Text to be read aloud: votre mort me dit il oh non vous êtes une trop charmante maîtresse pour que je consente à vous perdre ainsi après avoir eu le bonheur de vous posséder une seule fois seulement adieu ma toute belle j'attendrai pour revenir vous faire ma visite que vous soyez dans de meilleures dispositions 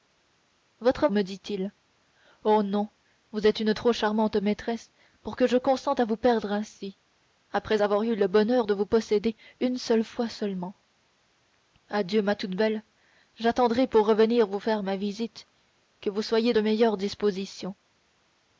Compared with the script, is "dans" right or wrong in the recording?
wrong